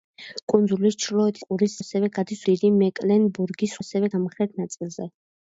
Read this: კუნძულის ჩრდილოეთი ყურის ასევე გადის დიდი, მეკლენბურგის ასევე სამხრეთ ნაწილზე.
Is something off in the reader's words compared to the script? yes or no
no